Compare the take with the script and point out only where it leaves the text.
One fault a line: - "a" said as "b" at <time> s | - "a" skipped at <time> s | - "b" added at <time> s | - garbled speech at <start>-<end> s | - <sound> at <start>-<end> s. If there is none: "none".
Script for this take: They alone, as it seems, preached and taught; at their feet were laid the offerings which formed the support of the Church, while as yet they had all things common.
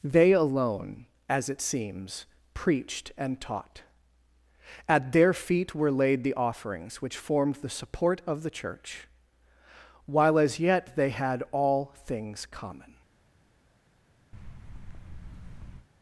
- thud at 14.3-15.9 s